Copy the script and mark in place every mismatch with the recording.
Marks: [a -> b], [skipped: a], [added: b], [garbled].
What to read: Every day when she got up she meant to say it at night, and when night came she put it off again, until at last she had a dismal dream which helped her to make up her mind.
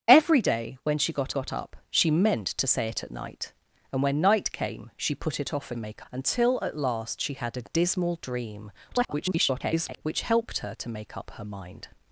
Every day when she got [added: got] up she meant to say it at night, and when night came she put it off [again, -> make] until at last she had a dismal dream [garbled] which helped her to make up her mind.